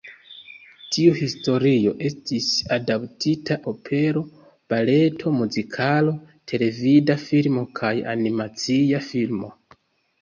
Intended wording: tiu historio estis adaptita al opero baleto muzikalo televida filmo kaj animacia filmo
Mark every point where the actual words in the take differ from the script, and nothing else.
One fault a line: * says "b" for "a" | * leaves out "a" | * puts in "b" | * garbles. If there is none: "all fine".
* leaves out "al"